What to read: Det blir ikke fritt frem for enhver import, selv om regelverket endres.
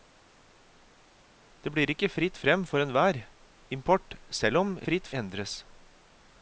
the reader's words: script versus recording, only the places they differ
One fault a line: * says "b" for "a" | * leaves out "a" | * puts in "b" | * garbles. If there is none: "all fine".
* says "fritt" for "regelverket"